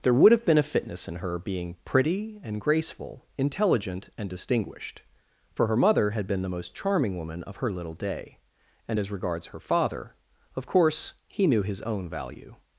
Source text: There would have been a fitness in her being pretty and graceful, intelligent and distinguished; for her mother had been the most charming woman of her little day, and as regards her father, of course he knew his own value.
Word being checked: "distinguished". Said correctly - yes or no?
yes